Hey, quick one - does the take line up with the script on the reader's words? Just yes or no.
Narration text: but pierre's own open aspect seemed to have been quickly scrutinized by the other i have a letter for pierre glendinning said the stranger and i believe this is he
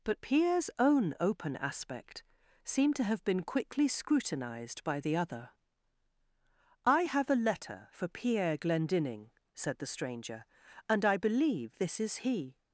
yes